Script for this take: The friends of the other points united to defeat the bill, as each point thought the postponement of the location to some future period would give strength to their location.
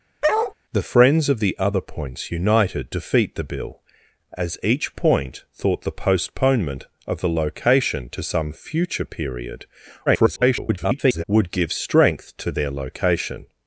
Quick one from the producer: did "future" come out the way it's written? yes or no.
yes